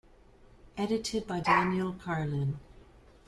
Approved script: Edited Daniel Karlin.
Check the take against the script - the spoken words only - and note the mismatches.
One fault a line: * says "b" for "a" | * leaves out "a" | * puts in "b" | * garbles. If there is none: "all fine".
* puts in "by"